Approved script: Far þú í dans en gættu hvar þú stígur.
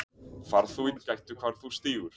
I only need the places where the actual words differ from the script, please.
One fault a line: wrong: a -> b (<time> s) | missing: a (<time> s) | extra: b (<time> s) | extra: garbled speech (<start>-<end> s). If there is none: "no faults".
missing: dans (0.9 s)